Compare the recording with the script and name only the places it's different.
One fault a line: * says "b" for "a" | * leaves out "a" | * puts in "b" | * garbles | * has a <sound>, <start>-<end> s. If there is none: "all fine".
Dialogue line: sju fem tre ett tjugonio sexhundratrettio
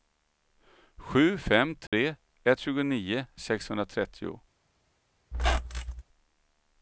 * has a dropout, 1.9-1.9 s
* has a squeak, 5.3-6.0 s